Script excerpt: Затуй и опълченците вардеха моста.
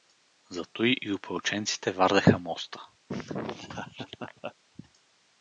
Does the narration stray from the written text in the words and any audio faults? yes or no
yes